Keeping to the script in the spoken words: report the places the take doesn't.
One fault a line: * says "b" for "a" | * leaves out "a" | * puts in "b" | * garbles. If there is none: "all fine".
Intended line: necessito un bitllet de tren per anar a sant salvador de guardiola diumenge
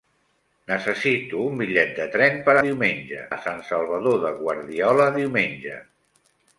* says "diumenge" for "anar"